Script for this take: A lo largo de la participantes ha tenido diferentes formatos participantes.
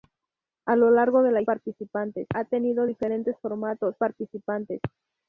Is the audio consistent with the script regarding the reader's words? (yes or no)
yes